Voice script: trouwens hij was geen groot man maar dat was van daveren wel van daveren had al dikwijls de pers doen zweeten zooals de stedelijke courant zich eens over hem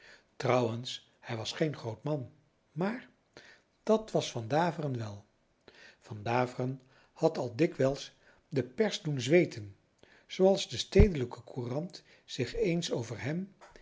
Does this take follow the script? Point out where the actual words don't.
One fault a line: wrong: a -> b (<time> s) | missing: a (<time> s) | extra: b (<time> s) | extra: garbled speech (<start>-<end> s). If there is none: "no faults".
no faults